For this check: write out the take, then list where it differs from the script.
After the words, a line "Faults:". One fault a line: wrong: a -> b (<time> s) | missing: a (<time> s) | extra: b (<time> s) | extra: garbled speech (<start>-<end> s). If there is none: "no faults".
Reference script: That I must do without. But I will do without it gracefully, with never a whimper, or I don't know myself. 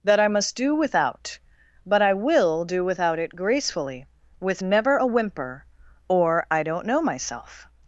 That I must do without. But I will do without it gracefully, with never a whimper, or I don't know myself.
Faults:
no faults